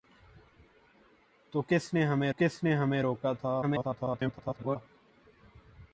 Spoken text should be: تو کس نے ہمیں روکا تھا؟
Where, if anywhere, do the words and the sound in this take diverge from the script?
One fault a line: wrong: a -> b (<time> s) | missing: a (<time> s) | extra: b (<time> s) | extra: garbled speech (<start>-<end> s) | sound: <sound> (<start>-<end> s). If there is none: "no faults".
extra: کس نے ہمیں (2.3 s)
extra: garbled speech (3.6-4.8 s)